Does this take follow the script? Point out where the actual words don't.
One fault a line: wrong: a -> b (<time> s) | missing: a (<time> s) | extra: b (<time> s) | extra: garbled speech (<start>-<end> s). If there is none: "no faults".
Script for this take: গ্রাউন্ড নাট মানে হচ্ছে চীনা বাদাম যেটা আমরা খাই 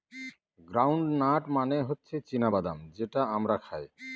no faults